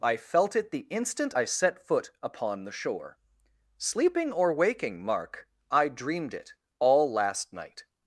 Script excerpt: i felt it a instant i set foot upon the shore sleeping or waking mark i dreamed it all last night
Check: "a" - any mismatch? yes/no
yes